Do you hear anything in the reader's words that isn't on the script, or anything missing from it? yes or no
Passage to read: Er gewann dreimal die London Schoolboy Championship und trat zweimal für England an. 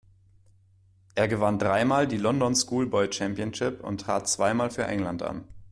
no